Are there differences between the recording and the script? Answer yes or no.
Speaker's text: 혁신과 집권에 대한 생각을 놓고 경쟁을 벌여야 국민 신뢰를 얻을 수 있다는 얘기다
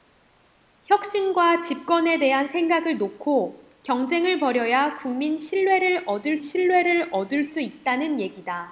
yes